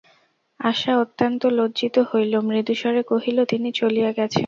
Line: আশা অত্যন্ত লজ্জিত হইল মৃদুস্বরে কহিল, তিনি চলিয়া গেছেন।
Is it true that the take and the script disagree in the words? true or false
false